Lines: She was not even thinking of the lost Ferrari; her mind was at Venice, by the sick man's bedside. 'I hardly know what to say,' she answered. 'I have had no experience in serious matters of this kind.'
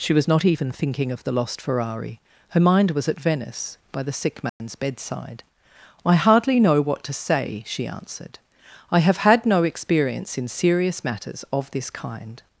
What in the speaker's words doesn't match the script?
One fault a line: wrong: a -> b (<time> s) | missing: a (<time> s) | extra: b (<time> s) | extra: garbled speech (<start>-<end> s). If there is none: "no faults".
no faults